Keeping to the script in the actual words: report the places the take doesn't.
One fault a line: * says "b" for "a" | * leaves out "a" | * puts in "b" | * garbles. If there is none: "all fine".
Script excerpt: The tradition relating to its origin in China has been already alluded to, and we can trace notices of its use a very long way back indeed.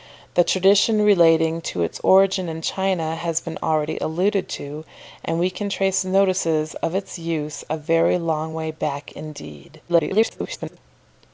* garbles